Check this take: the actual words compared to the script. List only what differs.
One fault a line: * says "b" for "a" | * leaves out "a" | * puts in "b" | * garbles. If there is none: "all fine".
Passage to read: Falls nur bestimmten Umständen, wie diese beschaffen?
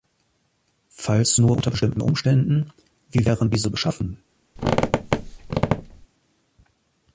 * puts in "unter"
* puts in "wären"